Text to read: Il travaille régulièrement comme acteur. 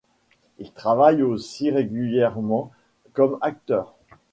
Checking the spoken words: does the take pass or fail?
fail